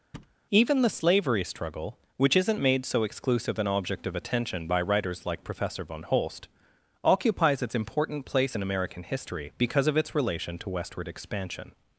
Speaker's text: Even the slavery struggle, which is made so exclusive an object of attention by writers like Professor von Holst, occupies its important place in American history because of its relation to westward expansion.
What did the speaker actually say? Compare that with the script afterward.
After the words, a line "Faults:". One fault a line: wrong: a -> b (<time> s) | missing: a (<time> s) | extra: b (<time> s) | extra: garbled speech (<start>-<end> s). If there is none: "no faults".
Even the slavery struggle, which isn't made so exclusive an object of attention by writers like Professor von Holst, occupies its important place in American history because of its relation to westward expansion.
Faults:
wrong: is -> isn't (2.4 s)